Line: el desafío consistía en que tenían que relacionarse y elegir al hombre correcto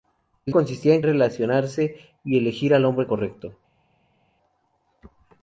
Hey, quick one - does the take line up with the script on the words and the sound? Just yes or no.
no